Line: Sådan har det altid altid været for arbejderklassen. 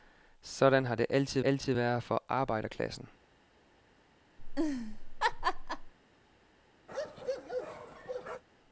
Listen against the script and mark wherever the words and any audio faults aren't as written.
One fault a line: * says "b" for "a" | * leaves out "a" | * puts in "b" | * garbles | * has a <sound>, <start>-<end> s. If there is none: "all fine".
* has a laugh, 4.4-5.9 s
* has a bark, 6.9-8.4 s